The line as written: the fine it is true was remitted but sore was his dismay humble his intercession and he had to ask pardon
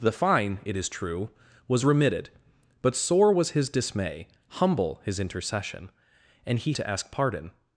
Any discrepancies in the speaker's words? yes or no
yes